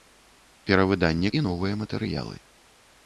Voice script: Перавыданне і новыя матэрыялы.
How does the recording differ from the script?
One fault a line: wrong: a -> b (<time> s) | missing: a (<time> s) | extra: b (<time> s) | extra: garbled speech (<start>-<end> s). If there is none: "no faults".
no faults